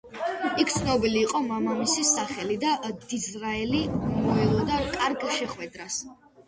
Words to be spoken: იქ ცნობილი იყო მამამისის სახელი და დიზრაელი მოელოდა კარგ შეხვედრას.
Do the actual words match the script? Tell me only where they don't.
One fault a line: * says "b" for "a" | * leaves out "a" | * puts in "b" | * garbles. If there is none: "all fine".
all fine